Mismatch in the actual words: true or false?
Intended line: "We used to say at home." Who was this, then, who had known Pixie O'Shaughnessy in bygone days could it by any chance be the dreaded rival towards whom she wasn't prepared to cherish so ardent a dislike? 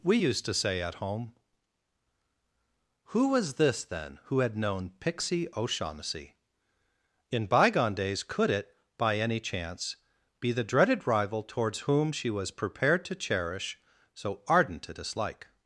true